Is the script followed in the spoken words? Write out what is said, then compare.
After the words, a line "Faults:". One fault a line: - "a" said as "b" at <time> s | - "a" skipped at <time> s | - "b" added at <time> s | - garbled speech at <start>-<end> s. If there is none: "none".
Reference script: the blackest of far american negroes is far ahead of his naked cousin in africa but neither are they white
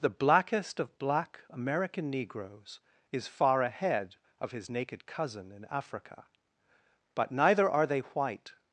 the blackest of black american negroes is far ahead of his naked cousin in africa but neither are they white
Faults:
- "far" said as "black" at 1.0 s